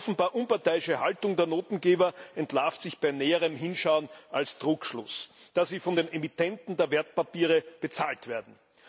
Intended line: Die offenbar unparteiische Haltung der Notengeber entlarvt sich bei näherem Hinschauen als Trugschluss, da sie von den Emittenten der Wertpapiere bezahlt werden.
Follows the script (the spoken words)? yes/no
yes